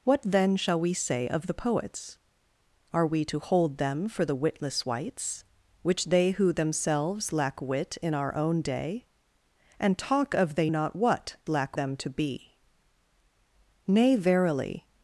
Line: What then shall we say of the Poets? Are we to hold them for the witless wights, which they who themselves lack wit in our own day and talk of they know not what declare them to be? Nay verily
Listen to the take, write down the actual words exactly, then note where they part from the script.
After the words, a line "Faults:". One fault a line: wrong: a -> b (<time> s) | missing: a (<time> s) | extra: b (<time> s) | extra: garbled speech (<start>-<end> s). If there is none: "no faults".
What then shall we say of the Poets? Are we to hold them for the witless wights, which they who themselves lack wit in our own day and talk of they not what lack them to be? Nay verily
Faults:
missing: know (10.7 s)
wrong: declare -> lack (11.5 s)